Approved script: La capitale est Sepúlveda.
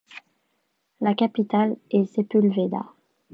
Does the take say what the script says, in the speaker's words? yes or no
yes